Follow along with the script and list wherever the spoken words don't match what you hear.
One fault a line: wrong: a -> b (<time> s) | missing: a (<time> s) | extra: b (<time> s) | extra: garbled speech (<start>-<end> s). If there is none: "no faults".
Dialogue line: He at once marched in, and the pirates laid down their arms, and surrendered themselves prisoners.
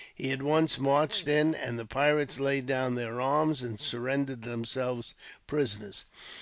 no faults